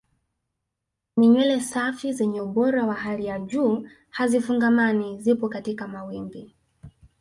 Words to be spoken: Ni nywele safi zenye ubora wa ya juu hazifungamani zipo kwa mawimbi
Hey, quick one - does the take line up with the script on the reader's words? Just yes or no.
no